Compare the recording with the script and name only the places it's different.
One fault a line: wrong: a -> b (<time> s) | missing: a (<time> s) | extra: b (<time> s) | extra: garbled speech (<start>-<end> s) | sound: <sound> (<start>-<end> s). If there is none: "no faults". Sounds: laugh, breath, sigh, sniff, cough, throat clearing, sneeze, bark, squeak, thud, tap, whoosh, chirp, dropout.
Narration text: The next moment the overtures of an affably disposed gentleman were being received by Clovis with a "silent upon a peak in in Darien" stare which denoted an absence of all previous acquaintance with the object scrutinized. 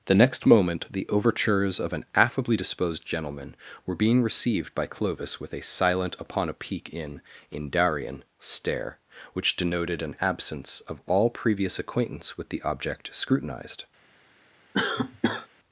sound: cough (14.7-15.5 s)